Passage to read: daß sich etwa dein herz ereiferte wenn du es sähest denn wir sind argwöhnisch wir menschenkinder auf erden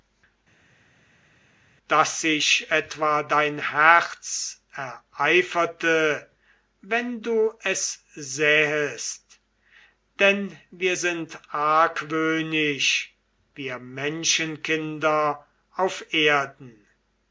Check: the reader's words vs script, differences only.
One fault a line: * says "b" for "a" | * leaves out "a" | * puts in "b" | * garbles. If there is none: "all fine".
all fine